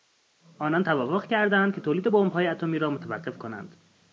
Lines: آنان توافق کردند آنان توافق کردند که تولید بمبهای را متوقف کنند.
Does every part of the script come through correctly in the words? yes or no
no